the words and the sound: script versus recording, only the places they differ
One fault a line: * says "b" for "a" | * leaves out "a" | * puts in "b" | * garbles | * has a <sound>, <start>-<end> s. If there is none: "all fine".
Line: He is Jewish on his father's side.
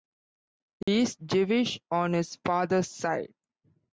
* has a dropout, 0.8-0.9 s